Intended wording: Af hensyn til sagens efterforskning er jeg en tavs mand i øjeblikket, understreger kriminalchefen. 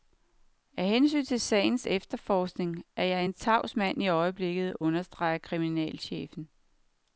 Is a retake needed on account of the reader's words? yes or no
no